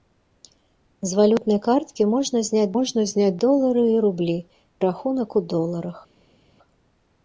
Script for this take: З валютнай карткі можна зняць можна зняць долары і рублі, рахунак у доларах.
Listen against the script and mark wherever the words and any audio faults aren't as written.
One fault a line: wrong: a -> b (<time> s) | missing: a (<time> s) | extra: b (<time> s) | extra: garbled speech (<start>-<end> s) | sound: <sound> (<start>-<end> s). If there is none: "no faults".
no faults